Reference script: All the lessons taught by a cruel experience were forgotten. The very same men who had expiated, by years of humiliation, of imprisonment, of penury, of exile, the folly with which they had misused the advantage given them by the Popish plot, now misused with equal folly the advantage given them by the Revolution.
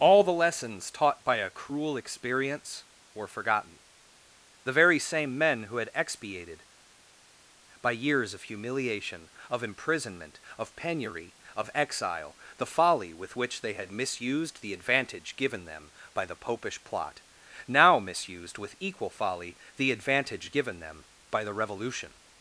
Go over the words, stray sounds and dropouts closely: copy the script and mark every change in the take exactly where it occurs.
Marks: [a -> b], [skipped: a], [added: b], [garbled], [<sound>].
All the lessons taught by a cruel experience were forgotten. The very same men who had expiated, by years of humiliation, of imprisonment, of penury, of exile, the folly with which they had misused the advantage given them by the Popish plot, now misused with equal folly the advantage given them by the Revolution.